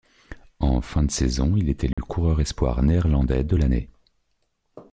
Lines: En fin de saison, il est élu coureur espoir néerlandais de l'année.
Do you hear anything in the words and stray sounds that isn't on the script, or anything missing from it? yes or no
yes